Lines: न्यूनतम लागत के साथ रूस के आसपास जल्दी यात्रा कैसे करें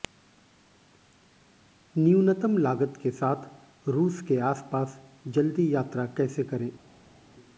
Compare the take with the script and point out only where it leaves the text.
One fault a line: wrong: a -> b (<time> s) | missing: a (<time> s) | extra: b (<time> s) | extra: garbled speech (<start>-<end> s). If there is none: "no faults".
no faults